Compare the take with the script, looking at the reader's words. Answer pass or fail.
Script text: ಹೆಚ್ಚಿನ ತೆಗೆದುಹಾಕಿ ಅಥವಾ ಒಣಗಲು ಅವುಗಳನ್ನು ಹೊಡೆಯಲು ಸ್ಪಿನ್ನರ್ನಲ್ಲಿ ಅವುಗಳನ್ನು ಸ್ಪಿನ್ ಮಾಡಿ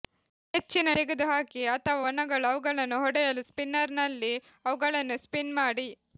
pass